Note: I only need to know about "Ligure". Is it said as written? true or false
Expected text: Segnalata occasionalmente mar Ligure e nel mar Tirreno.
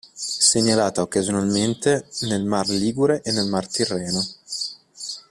true